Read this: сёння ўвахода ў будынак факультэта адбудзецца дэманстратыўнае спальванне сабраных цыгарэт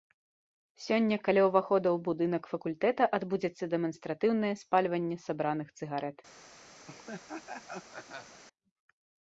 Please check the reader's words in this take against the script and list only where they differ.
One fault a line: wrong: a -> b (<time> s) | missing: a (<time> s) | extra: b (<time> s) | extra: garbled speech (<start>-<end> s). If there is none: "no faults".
extra: каля (1.3 s)